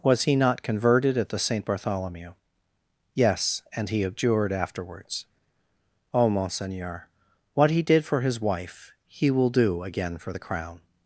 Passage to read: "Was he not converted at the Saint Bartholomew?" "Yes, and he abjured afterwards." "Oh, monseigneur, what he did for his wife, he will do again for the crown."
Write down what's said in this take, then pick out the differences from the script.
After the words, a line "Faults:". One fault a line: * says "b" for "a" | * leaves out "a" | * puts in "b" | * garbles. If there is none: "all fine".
"Was he not converted at the Saint Bartholomew?" "Yes, and he abjured afterwards." "Oh, monseigneur, what he did for his wife, he will do again for the crown."
Faults:
all fine